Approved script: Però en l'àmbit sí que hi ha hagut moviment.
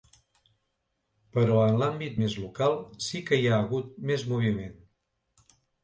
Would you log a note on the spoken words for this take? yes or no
yes